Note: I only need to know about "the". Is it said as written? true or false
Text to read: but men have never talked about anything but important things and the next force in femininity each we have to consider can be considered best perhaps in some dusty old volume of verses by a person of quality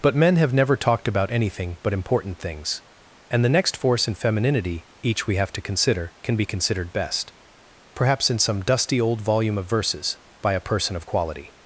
true